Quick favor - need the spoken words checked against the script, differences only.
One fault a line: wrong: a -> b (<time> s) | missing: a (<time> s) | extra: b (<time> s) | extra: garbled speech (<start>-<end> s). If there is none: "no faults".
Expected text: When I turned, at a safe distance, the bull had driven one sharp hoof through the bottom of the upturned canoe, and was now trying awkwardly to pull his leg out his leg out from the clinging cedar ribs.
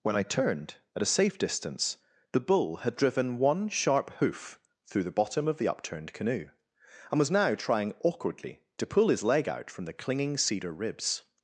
missing: his leg out (9.7 s)